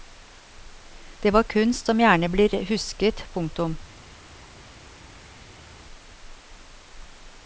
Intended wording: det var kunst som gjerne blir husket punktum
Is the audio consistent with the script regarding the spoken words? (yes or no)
yes